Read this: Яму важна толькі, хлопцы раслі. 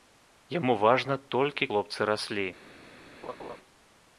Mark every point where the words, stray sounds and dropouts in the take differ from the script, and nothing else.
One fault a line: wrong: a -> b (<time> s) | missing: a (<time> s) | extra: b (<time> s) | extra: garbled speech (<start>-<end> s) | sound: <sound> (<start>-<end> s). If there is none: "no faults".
sound: laugh (3.2-3.6 s)